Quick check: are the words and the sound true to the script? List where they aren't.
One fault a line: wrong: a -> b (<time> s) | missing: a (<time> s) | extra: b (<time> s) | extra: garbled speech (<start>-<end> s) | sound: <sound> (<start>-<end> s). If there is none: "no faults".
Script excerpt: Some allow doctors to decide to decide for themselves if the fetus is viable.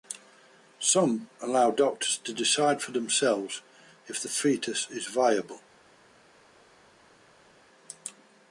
missing: to decide (2.8 s)